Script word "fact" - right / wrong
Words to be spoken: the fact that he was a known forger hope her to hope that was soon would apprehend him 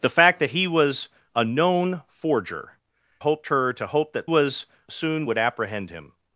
right